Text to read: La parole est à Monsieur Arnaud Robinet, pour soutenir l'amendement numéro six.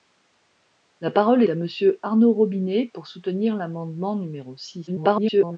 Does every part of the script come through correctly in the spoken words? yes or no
no